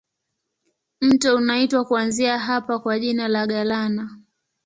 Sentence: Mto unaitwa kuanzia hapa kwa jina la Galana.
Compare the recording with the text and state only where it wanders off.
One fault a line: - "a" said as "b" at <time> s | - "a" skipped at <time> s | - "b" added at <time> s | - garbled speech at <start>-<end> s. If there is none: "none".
none